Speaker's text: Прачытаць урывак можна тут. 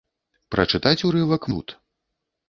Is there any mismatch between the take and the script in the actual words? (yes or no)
yes